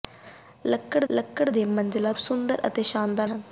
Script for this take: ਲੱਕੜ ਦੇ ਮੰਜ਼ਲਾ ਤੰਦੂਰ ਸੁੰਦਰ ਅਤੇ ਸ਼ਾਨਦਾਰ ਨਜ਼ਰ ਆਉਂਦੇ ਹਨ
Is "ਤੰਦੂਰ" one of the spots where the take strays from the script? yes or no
yes